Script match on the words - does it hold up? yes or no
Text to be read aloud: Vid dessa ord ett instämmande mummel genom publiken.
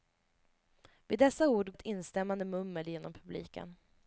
yes